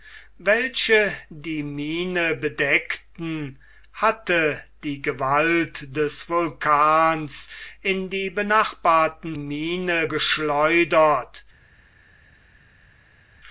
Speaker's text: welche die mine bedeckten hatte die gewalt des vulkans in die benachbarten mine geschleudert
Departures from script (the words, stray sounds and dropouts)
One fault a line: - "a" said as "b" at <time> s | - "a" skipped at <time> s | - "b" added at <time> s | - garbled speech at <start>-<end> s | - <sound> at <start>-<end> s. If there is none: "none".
none